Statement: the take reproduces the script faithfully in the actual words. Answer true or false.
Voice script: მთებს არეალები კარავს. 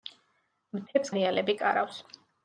true